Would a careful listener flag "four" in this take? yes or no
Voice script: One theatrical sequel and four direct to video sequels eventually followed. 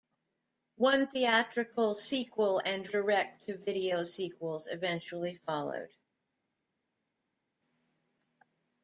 yes